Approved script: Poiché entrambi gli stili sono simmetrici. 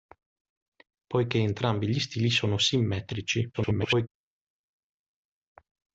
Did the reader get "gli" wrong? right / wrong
right